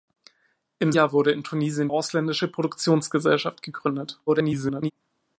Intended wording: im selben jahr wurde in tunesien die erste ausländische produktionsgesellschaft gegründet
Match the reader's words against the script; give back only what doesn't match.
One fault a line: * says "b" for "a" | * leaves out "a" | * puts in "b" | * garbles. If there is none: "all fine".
* leaves out "selben"
* leaves out "die erste"
* garbles